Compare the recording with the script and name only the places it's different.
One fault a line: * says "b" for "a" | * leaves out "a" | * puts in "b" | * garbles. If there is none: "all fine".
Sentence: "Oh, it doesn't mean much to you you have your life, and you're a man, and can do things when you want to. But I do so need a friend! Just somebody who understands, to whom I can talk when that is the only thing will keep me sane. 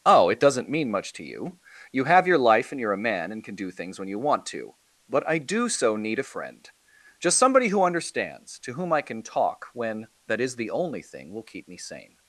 all fine